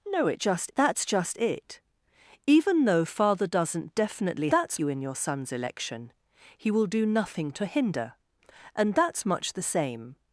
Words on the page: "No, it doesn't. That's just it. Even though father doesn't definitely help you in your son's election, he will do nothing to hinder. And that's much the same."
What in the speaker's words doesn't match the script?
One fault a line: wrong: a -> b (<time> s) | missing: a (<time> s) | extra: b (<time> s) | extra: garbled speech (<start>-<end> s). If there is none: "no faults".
wrong: doesn't -> just (0.4 s)
wrong: help -> that's (4.5 s)